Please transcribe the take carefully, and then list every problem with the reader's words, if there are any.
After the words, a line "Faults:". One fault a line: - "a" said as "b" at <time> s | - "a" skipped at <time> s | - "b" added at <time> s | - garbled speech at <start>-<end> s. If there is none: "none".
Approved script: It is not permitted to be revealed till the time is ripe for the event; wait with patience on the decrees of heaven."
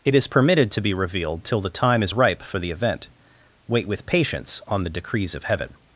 It is permitted to be revealed till the time is ripe for the event; wait with patience on the decrees of heaven."
Faults:
- "not" skipped at 0.3 s